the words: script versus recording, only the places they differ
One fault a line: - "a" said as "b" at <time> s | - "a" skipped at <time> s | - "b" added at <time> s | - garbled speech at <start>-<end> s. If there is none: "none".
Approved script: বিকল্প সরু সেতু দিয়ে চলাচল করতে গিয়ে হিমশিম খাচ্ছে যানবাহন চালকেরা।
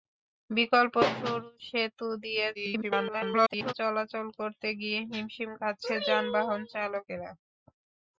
- garbled speech at 2.5-3.7 s